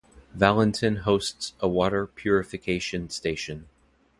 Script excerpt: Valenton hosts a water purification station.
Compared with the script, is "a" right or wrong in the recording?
right